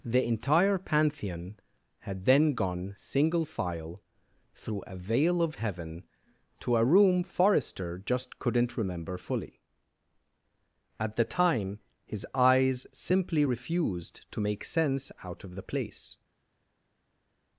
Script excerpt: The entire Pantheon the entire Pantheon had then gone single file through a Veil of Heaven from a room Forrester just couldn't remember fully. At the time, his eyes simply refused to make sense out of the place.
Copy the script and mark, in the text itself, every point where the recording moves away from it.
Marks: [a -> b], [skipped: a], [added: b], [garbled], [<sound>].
The entire Pantheon [skipped: the entire Pantheon] had then gone single file through a Veil of Heaven [from -> to] a room Forrester just couldn't remember fully. At the time, his eyes simply refused to make sense out of the place.